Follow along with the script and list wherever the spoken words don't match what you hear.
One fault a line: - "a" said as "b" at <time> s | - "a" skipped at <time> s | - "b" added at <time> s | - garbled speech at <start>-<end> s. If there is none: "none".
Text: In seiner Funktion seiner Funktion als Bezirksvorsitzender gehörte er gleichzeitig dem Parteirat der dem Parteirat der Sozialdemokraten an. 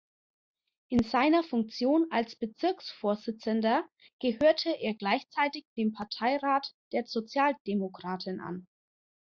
- "seiner Funktion" skipped at 2.1 s
- "dem Parteirat der" skipped at 7.0 s